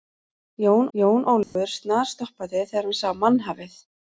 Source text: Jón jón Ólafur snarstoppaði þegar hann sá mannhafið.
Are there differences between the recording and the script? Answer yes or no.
no